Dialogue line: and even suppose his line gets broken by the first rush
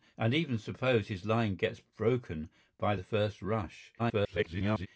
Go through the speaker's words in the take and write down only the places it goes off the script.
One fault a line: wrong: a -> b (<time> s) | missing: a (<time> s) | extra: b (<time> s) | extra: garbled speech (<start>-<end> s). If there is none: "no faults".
extra: garbled speech (4.0-4.9 s)